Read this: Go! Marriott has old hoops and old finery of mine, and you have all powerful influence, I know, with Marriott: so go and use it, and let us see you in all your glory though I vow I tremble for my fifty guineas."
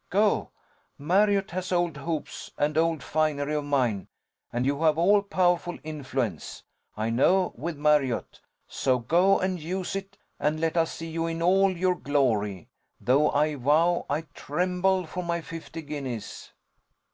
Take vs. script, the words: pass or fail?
pass